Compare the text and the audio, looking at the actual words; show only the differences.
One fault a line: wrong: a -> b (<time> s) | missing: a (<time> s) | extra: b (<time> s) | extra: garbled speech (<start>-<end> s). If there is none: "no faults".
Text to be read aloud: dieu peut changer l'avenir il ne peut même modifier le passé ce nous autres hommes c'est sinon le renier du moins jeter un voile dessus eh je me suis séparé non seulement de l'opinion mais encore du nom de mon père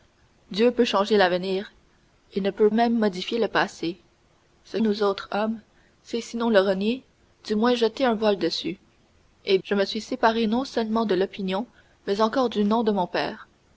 no faults